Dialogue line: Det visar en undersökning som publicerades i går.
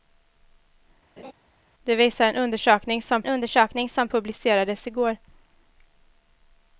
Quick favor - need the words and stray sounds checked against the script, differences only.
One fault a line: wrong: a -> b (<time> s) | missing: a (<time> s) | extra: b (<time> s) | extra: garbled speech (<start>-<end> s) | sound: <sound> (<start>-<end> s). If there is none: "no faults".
sound: laugh (1.2-1.3 s)
extra: undersökning som (3.3 s)